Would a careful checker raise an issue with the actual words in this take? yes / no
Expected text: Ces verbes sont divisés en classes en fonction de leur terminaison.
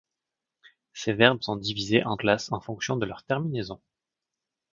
no